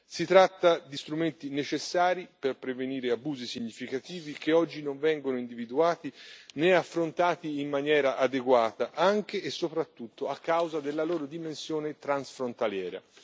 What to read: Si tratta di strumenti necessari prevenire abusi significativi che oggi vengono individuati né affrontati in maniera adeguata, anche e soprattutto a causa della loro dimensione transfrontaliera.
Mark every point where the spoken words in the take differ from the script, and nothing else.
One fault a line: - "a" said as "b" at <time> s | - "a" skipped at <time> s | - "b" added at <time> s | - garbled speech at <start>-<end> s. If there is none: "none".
- "per" added at 2.4 s
- "non" added at 4.8 s